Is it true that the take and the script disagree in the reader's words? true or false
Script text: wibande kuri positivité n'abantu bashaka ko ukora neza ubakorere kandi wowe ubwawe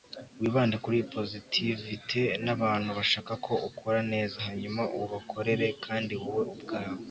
true